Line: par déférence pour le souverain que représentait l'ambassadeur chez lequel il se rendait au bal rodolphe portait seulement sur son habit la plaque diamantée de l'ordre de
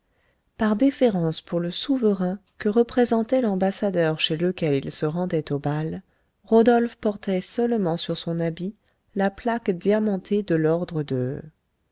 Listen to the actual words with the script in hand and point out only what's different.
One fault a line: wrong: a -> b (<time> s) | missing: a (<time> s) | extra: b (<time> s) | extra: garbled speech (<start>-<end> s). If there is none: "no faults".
no faults